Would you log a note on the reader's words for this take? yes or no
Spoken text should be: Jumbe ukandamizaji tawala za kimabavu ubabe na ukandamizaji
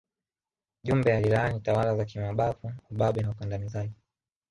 yes